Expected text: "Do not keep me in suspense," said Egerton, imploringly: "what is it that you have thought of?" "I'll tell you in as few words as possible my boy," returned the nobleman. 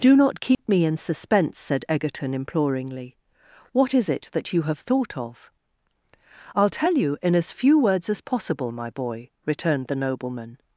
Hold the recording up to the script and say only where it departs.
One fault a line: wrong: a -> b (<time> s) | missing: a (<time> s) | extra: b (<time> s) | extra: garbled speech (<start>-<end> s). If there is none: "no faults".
no faults